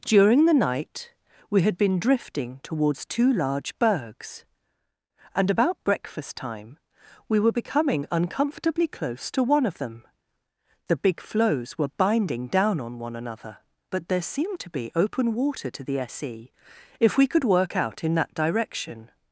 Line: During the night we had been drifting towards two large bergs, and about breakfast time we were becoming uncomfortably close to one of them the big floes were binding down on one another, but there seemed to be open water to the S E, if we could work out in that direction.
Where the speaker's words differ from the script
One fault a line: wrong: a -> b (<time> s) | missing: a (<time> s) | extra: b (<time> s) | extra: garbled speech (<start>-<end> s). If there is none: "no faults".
no faults